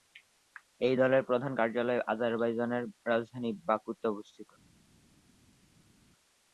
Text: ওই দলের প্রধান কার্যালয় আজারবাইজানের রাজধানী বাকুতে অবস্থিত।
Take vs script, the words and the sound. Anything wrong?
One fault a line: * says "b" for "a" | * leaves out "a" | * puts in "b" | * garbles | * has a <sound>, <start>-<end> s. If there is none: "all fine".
* says "এই" for "ওই"